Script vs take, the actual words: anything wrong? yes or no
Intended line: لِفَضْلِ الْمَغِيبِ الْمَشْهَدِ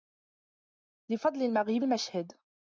no